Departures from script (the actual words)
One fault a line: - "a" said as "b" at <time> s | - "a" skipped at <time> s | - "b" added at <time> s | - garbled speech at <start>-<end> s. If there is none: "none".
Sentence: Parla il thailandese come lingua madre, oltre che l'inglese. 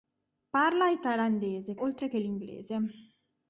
- "come lingua madre" skipped at 1.8 s